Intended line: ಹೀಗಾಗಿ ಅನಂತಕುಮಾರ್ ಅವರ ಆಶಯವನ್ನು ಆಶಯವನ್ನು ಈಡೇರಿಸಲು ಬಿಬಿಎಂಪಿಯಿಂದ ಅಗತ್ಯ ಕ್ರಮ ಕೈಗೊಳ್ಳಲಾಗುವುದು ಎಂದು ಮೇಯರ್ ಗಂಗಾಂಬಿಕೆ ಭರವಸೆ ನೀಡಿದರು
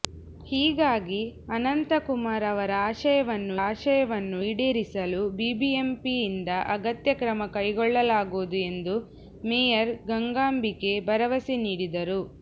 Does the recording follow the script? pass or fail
pass